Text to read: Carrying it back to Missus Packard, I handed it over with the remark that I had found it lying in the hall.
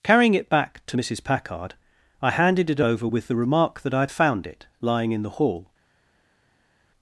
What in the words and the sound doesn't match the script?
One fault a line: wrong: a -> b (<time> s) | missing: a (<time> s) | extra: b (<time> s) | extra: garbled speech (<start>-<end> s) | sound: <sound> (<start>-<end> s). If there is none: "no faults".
no faults